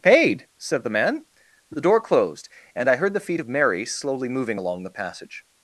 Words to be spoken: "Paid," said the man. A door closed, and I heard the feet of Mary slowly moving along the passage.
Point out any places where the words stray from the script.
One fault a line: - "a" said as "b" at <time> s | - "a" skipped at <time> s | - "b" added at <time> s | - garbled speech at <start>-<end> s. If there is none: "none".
- "A" said as "The" at 1.7 s